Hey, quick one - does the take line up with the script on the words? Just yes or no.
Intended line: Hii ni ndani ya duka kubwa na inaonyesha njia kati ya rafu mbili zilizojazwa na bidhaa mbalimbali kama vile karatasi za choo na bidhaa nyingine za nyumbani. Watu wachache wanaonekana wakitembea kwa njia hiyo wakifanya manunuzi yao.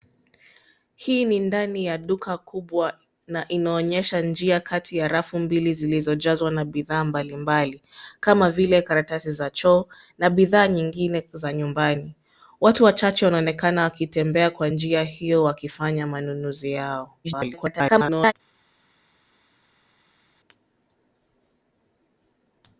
no